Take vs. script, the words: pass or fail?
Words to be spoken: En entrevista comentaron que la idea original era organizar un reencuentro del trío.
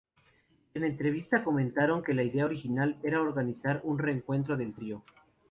pass